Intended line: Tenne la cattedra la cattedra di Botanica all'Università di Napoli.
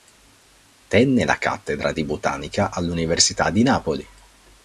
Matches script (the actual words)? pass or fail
fail